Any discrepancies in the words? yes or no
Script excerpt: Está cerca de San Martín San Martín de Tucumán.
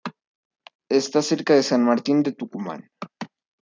yes